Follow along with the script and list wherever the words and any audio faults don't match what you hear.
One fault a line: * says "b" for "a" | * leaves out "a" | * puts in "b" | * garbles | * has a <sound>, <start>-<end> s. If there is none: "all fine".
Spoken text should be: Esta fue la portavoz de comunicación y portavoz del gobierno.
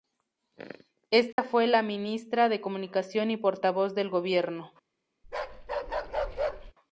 * has a dropout, 1.3-1.4 s
* says "ministra" for "portavoz"
* has a bark, 5.2-6.7 s